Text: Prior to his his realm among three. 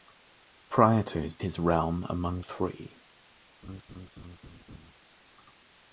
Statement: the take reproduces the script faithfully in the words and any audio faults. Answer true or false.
false